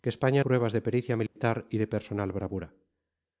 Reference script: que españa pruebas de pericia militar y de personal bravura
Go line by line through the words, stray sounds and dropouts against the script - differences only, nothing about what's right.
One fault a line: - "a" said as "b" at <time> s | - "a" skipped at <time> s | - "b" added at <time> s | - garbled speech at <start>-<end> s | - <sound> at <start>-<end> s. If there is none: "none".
- dropout at 1.3-1.4 s